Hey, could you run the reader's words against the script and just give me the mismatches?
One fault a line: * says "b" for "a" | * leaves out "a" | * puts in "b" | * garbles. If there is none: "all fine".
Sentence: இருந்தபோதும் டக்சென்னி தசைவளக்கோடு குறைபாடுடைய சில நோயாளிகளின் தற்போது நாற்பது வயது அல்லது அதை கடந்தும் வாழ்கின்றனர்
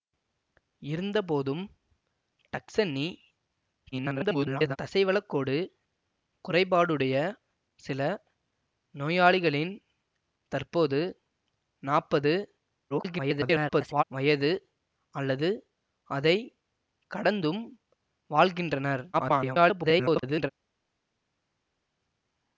* garbles
* garbles
* garbles